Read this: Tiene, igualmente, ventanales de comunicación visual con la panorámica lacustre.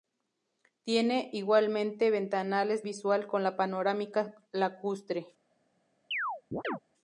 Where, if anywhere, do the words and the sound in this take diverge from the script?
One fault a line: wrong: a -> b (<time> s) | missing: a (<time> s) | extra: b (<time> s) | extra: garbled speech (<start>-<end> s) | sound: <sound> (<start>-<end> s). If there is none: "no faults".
missing: de comunicación (2.8 s)
sound: chirp (6.1-6.8 s)